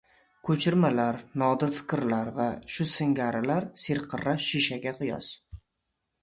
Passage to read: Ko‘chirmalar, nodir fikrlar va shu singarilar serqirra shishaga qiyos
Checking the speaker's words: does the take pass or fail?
pass